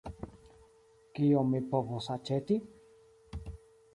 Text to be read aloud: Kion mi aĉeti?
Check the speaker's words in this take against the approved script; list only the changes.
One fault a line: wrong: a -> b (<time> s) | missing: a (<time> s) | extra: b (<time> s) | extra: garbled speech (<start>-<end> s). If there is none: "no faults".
extra: povos (1.8 s)